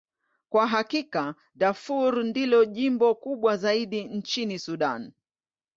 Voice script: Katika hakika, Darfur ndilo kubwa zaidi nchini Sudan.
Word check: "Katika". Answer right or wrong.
wrong